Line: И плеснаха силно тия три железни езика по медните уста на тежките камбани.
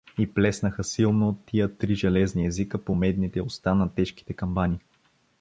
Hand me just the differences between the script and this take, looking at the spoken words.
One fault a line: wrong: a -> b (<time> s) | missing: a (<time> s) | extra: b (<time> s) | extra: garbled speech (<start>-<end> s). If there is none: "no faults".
no faults